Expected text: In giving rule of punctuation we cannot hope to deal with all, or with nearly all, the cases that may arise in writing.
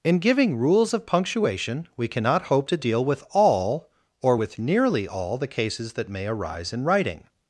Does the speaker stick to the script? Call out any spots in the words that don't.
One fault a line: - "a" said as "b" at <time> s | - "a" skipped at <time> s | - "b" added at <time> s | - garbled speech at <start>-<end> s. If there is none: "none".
- "rule" said as "rules" at 0.6 s